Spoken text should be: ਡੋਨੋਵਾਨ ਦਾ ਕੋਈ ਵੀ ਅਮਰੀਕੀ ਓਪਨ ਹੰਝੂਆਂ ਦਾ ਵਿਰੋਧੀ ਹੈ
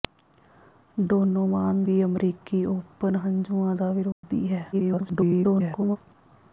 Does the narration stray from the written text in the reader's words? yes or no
yes